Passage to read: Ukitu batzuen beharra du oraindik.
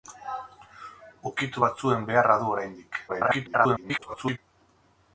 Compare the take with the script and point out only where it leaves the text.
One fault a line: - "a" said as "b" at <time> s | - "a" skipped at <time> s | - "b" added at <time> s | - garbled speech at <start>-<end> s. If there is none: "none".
- garbled speech at 3.1-4.4 s